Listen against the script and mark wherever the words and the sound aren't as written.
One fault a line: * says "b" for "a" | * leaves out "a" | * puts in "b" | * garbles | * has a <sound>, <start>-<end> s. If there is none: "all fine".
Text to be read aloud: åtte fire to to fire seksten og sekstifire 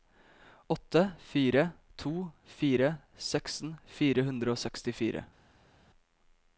* says "fire seksten" for "to"
* says "hundre" for "seksten"